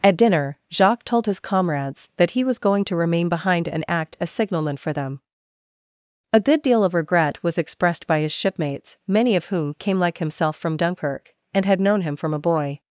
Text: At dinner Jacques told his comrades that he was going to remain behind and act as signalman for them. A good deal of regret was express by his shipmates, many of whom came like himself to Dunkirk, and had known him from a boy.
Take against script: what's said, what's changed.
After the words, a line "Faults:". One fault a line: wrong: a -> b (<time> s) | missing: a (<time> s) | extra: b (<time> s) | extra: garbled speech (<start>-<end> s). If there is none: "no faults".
At dinner Jacques told his comrades that he was going to remain behind and act as signalman for them. A good deal of regret was expressed by his shipmates, many of whom came like himself from Dunkirk, and had known him from a boy.
Faults:
wrong: express -> expressed (7.6 s)
wrong: to -> from (10.6 s)